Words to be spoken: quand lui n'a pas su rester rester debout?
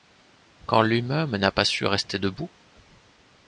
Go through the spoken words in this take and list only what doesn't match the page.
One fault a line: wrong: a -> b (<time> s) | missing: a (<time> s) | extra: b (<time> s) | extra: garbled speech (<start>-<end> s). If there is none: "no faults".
extra: même (1.0 s)
missing: rester (2.2 s)